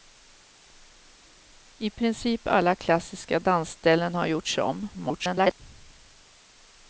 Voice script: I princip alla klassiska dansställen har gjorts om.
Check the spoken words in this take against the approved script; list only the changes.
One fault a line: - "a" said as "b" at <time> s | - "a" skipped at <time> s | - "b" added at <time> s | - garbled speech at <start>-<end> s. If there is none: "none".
- garbled speech at 4.9-5.6 s